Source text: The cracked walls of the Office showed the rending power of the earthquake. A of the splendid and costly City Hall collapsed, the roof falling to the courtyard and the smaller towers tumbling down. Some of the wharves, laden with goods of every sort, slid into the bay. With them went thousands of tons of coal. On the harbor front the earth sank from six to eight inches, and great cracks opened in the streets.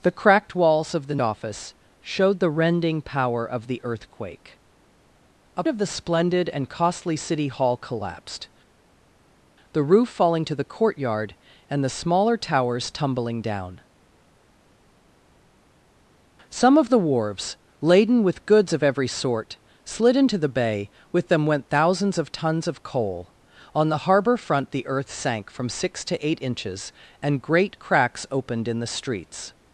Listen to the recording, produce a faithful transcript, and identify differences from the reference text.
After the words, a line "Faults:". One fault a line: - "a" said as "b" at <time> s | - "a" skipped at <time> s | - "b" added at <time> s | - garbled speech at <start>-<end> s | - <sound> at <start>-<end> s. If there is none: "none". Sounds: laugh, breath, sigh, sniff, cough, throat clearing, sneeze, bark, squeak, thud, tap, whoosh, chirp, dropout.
The cracked walls of the Office showed the rending power of the earthquake. A of the splendid and costly City Hall collapsed, the roof falling to the courtyard and the smaller towers tumbling down. Some of the wharves, laden with goods of every sort, slid into the bay. With them went thousands of tons of coal. On the harbor front the earth sank from six to eight inches, and great cracks opened in the streets.
Faults:
none